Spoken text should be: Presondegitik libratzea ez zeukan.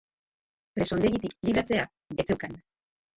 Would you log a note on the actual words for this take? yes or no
no